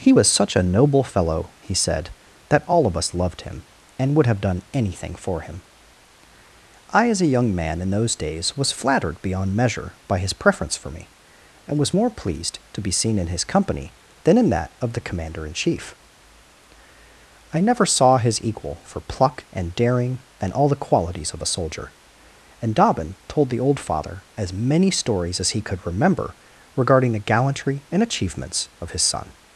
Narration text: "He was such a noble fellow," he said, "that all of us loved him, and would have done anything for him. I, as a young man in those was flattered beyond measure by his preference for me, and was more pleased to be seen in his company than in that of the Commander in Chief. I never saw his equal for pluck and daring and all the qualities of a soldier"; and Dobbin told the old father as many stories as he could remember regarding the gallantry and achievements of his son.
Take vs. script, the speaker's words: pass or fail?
fail